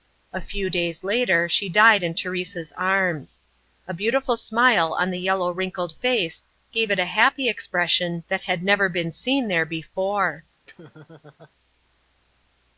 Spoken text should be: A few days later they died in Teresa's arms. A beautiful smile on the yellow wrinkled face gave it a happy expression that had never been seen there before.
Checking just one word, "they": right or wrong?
wrong